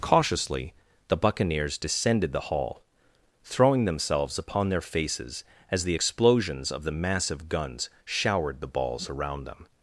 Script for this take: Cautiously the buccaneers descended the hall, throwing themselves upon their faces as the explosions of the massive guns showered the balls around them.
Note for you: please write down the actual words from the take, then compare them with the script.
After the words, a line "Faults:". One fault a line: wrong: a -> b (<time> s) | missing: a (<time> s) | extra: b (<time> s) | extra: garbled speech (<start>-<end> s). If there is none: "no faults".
Cautiously the buccaneers descended the hall, throwing themselves upon their faces as the explosions of the massive guns showered the balls around them.
Faults:
no faults